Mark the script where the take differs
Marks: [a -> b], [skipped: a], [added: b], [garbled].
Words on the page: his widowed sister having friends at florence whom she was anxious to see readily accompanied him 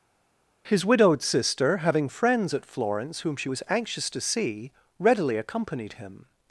his widowed sister having friends at florence whom she was anxious to see readily accompanied him